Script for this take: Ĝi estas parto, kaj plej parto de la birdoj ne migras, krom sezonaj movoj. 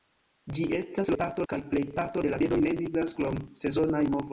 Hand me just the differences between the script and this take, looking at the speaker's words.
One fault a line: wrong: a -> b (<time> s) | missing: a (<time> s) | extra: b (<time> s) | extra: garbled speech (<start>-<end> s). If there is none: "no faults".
no faults